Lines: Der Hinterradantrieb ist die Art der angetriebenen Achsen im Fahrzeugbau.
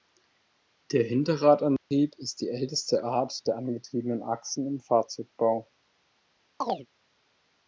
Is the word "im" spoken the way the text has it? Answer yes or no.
yes